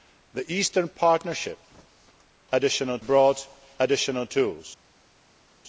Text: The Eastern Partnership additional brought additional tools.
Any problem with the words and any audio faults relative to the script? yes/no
no